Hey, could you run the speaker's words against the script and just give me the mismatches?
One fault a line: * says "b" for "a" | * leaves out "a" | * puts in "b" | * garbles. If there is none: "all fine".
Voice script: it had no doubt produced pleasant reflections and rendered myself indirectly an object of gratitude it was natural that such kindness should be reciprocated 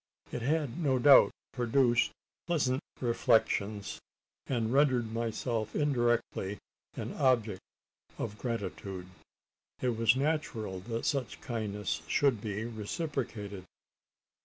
all fine